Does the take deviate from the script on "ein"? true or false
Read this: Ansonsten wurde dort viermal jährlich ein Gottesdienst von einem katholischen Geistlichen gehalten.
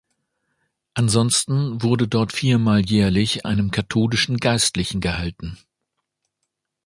true